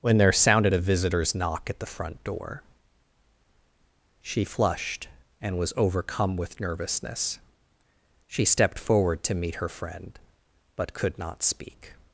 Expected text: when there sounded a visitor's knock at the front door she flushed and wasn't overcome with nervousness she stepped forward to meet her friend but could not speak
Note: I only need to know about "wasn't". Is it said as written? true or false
false